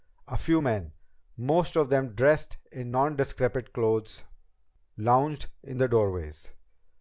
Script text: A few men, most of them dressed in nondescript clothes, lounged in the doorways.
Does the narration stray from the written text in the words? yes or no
no